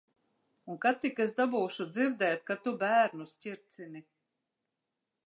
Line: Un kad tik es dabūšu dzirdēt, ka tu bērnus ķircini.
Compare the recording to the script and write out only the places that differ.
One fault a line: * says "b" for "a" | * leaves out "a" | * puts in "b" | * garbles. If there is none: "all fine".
all fine